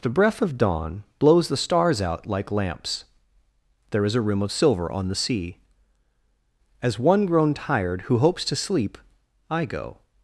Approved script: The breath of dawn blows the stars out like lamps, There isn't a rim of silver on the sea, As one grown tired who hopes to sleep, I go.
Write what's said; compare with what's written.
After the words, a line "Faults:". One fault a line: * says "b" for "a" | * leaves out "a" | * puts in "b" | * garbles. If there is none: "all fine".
The breath of dawn blows the stars out like lamps, There is a rim of silver on the sea, As one grown tired who hopes to sleep, I go.
Faults:
* says "is" for "isn't"